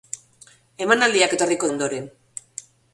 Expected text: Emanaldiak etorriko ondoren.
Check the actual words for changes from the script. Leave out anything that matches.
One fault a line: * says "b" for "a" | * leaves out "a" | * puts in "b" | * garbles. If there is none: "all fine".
all fine